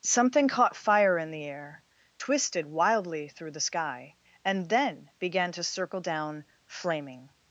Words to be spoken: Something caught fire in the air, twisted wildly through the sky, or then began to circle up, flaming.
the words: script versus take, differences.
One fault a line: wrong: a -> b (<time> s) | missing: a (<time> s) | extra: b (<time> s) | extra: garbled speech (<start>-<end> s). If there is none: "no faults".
wrong: or -> and (4.4 s)
wrong: up -> down (6.0 s)